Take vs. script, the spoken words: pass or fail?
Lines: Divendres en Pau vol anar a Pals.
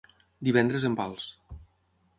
fail